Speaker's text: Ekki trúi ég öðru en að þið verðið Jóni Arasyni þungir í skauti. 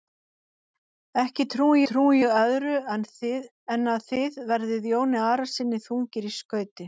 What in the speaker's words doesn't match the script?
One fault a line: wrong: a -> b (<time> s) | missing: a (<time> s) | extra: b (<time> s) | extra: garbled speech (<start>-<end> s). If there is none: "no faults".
extra: trúi (1.9 s)